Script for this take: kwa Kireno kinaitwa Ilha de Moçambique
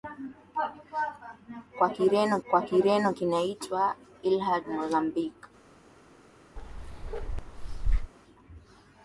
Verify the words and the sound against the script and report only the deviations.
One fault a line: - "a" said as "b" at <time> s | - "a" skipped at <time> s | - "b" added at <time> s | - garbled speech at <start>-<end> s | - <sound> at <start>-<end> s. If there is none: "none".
- "kwa Kireno" added at 2.5 s
- "de" skipped at 4.6 s
- bark at 6.6-8.1 s